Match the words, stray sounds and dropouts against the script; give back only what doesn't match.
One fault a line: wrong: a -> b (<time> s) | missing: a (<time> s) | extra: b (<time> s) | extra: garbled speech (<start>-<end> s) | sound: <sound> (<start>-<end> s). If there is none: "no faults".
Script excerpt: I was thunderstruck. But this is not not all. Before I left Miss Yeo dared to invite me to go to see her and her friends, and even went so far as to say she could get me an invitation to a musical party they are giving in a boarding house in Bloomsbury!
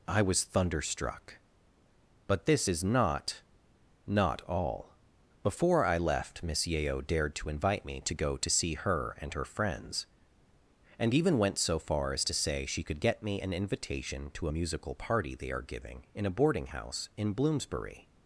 no faults